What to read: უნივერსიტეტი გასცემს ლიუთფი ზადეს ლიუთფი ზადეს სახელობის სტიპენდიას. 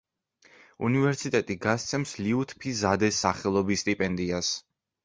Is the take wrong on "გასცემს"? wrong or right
right